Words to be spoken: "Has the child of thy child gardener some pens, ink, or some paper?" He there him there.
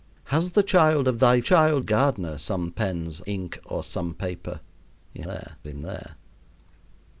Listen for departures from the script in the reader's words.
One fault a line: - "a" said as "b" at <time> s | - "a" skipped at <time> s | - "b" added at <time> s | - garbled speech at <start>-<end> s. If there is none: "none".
none